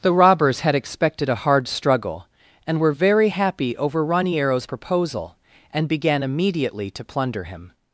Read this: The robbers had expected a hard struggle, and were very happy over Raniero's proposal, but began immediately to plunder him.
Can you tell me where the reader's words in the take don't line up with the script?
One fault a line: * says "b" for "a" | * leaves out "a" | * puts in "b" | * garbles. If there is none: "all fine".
* says "and" for "but"